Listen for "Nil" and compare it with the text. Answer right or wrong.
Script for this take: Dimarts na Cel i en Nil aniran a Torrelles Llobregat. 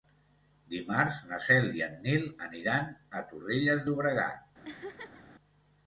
right